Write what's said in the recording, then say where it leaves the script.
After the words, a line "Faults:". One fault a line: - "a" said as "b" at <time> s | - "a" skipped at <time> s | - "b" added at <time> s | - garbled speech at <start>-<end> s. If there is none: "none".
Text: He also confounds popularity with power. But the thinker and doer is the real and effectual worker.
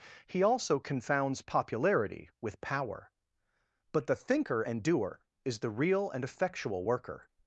He also confounds popularity with power. But the thinker and doer is the real and effectual worker.
Faults:
none